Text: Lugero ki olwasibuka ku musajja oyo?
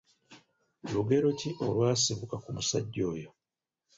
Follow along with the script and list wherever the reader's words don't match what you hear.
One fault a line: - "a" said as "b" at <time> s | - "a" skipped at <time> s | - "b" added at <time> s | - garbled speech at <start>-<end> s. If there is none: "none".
none